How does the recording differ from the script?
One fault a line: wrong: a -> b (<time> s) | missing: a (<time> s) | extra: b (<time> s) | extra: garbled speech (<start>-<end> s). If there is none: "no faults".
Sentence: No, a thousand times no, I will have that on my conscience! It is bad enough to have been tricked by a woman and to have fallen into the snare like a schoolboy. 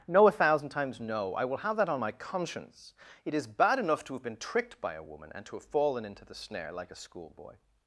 no faults